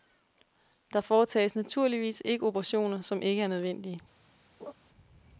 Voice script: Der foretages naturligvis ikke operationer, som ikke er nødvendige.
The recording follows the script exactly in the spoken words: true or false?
true